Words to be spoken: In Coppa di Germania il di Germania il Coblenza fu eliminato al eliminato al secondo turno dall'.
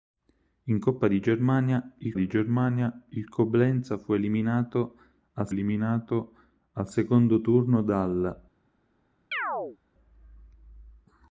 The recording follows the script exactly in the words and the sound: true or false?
false